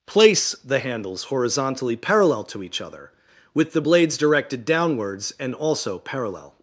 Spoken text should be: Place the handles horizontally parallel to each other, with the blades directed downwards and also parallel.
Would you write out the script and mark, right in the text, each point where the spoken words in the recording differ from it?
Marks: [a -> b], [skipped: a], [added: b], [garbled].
Place the handles horizontally parallel to each other, with the blades directed downwards and also parallel.